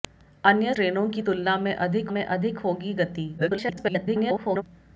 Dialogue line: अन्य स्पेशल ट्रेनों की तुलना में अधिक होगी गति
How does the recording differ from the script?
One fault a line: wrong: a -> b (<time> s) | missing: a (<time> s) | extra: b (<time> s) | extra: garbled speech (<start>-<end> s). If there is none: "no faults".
missing: स्पेशल (0.7 s)
extra: में अधिक (2.1 s)
extra: garbled speech (3.4-4.6 s)